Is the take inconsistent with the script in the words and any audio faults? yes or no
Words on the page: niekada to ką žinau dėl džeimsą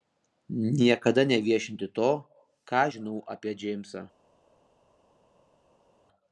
yes